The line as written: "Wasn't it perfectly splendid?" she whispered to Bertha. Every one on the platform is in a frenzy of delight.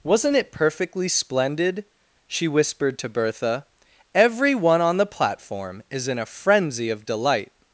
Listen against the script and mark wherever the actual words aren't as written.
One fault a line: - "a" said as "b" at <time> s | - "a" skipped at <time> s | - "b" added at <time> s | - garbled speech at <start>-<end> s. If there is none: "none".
none